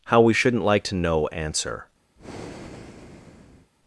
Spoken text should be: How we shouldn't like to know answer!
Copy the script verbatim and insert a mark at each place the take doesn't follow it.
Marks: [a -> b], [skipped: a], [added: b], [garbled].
How we shouldn't like to know answer!